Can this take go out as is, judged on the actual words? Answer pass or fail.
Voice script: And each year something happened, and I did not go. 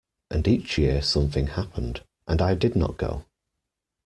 pass